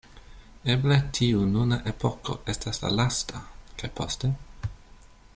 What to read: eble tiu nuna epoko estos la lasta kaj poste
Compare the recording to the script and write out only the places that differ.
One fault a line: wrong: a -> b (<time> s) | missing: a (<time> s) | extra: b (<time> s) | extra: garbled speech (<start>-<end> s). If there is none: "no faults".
wrong: estos -> estas (2.5 s)